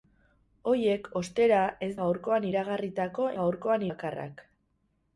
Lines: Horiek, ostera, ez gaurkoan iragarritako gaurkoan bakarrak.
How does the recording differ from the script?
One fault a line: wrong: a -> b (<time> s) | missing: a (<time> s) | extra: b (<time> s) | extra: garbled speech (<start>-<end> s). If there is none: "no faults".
no faults